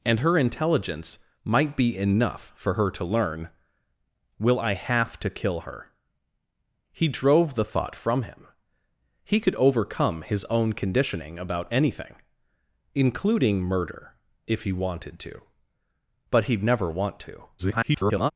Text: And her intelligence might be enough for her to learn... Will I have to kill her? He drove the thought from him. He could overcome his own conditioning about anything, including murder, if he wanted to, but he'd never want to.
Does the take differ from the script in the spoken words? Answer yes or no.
yes